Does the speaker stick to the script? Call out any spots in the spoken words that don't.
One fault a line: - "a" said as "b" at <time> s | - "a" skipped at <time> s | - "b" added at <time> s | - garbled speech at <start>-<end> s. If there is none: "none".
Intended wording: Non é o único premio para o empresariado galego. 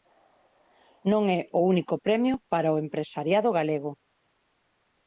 none